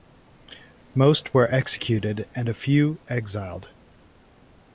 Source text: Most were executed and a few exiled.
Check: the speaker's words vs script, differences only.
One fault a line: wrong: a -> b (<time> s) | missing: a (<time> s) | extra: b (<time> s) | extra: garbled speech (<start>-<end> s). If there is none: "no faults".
no faults